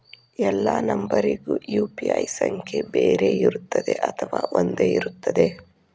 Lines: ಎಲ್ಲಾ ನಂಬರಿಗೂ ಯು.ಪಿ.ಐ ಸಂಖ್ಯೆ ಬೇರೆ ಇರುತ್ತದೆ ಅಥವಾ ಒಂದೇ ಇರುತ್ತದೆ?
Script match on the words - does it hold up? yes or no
yes